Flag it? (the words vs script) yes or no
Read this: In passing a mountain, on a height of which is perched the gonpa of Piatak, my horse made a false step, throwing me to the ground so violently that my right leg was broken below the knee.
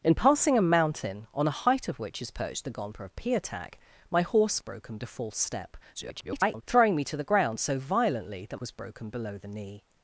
yes